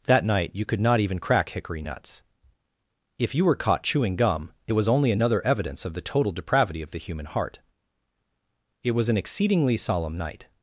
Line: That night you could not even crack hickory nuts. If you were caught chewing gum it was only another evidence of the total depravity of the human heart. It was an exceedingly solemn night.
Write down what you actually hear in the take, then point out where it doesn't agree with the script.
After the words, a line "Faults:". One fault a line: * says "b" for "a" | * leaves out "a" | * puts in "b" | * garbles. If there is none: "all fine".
That night you could not even crack hickory nuts. If you were caught chewing gum it was only another evidence of the total depravity of the human heart. It was an exceedingly solemn night.
Faults:
all fine